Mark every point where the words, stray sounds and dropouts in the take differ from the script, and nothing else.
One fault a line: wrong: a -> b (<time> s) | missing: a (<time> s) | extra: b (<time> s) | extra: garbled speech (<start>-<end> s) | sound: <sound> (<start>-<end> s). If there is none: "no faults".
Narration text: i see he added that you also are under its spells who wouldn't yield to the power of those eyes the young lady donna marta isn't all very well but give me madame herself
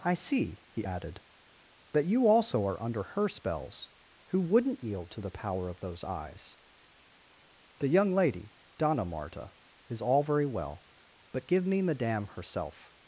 wrong: its -> her (3.1 s)
wrong: isn't -> is (9.9 s)